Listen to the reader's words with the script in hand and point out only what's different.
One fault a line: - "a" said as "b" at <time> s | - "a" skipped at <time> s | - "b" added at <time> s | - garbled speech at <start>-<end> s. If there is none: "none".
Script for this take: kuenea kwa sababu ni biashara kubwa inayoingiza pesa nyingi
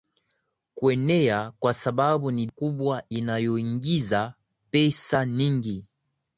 - "biashara" skipped at 2.5 s